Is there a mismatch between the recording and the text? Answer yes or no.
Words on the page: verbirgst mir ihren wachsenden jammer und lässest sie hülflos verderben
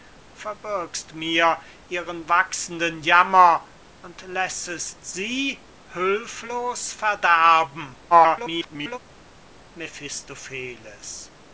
yes